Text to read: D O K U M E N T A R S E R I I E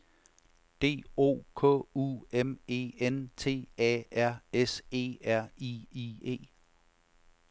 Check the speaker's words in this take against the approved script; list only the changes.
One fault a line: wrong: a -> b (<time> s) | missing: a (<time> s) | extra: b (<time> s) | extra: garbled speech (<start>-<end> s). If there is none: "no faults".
no faults